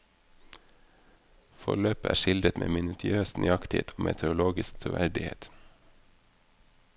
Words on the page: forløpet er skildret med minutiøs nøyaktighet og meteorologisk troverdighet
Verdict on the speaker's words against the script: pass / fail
pass